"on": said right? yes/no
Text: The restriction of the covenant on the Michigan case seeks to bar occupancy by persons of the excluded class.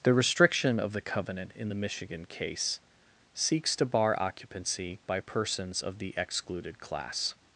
no